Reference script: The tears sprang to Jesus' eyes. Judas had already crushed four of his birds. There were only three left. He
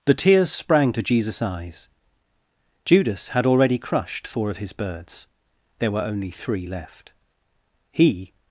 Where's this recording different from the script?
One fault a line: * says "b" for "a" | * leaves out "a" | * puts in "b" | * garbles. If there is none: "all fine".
all fine